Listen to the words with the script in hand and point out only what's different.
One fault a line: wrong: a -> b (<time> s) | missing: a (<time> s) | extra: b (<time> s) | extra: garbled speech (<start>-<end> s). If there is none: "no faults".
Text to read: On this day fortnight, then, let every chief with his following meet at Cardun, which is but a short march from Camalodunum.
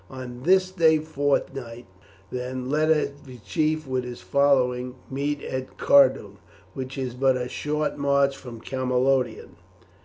no faults